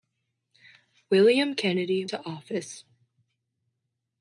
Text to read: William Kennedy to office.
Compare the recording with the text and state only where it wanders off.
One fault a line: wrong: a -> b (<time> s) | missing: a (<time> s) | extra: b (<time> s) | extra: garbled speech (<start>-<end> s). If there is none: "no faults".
no faults